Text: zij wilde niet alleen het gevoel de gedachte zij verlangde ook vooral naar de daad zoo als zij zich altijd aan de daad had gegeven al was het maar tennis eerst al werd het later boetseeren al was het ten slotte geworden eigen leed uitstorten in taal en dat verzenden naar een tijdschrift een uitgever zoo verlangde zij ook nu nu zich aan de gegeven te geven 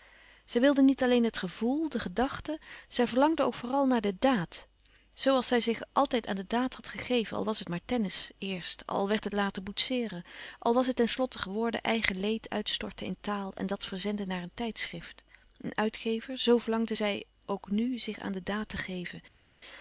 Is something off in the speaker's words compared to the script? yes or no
yes